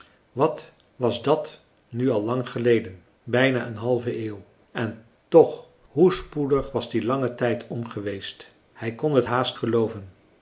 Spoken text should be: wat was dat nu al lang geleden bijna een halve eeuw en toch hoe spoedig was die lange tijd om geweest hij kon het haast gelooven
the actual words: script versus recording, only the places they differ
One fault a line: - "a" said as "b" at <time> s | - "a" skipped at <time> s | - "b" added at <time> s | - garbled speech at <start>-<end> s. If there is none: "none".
none